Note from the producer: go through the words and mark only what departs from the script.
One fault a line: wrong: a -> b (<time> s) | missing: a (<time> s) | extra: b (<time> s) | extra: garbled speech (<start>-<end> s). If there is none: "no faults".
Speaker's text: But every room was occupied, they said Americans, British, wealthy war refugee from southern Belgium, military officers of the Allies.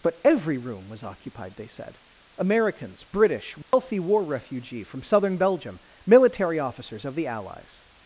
no faults